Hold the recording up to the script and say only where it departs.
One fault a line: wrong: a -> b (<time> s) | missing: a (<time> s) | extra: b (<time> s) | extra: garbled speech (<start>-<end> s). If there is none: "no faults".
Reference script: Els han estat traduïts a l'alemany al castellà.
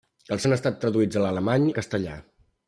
no faults